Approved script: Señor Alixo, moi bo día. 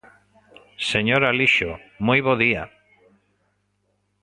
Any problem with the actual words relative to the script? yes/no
no